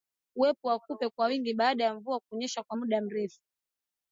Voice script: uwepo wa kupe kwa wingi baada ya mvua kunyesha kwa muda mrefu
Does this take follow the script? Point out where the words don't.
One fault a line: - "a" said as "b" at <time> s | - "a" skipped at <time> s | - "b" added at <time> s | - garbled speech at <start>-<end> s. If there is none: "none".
none